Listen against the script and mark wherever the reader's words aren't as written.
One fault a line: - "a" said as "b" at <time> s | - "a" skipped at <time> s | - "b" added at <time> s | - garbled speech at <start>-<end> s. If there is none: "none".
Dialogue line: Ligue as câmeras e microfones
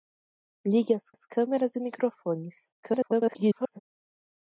- "as" added at 1.1 s
- garbled speech at 2.8-3.8 s